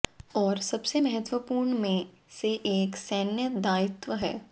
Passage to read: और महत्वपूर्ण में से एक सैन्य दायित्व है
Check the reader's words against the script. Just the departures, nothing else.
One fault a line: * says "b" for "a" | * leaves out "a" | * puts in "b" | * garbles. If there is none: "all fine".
* puts in "सबसे"